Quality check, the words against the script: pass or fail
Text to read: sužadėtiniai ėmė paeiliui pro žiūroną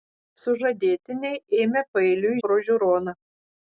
pass